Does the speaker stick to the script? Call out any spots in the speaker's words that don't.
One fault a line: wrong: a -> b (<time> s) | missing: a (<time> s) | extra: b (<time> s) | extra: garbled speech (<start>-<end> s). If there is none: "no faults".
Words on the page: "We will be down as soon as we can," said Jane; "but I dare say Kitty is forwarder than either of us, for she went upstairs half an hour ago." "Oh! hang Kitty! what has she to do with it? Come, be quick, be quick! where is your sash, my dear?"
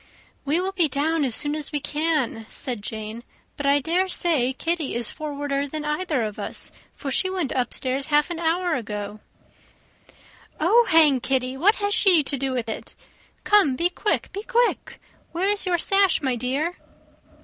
no faults